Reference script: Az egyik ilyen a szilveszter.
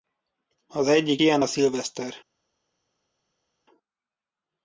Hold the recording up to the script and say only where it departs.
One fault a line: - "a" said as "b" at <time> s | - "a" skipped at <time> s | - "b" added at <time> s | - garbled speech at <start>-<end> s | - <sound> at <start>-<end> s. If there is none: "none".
none